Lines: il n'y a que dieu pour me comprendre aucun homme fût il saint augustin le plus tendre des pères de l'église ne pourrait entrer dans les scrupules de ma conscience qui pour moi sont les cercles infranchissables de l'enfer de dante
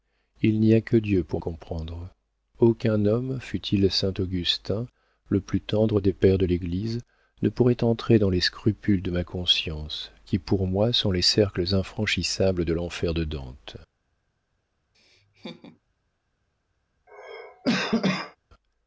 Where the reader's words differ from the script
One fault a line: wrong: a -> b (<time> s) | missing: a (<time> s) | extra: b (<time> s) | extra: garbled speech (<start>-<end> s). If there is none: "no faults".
missing: me (1.4 s)